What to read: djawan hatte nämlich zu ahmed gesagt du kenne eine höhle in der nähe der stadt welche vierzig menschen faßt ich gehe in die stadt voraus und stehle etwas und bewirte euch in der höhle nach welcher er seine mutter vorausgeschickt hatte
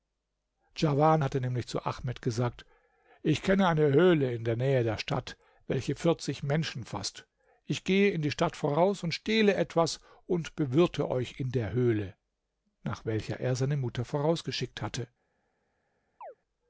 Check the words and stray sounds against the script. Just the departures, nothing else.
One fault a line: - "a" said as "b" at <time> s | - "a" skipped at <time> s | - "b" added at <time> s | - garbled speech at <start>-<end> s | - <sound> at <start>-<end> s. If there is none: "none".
- "du" said as "ich" at 3.2 s
- chirp at 16.2-16.3 s